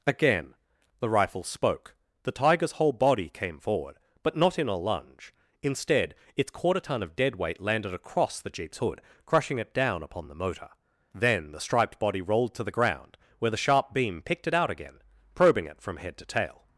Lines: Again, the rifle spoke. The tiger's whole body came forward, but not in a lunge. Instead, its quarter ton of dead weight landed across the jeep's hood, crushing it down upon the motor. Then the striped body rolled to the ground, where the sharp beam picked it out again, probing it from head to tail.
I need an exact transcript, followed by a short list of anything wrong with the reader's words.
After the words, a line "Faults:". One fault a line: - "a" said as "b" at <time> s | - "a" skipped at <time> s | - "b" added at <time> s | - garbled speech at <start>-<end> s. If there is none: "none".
Again, the rifle spoke. The tiger's whole body came forward, but not in a lunge. Instead, its quarter ton of dead weight landed across the jeep's hood, crushing it down upon the motor. Then the striped body rolled to the ground, where the sharp beam picked it out again, probing it from head to tail.
Faults:
none